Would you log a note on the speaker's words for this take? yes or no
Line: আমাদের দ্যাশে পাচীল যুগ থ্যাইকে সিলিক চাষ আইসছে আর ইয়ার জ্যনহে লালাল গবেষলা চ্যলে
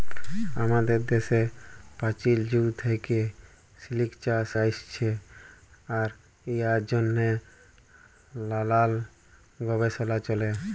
no